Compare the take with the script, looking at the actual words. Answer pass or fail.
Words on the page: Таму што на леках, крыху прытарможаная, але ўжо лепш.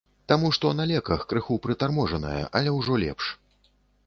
pass